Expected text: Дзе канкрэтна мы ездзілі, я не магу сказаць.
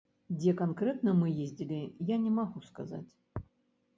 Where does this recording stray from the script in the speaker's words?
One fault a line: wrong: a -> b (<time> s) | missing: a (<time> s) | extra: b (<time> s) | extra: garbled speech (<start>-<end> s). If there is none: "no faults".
no faults